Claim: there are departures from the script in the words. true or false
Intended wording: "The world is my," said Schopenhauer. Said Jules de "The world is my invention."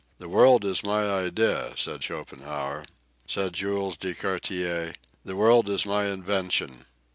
true